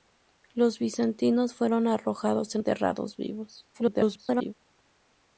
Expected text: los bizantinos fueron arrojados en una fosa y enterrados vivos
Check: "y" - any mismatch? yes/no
yes